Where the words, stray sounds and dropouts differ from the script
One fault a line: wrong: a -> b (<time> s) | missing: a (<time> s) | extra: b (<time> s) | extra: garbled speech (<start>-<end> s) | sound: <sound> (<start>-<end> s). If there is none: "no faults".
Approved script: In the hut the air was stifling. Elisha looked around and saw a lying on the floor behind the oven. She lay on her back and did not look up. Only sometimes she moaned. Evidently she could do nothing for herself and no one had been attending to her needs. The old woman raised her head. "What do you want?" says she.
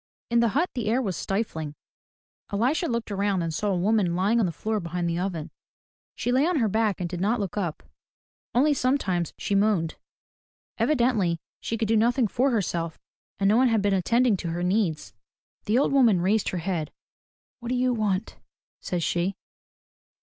extra: woman (3.8 s)